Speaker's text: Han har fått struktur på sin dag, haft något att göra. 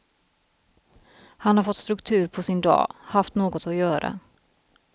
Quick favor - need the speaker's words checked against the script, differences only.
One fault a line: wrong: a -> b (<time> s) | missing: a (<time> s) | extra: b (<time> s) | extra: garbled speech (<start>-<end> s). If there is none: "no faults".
no faults